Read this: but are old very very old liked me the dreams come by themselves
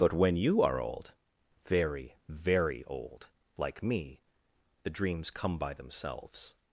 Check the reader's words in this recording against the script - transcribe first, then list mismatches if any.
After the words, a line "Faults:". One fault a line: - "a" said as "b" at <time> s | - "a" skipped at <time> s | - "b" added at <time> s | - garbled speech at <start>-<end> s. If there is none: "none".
but when you are old very very old like me the dreams come by themselves
Faults:
- "when you" added at 0.1 s
- "liked" said as "like" at 3.5 s